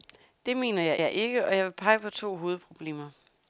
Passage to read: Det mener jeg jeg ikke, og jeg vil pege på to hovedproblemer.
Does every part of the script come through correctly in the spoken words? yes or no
yes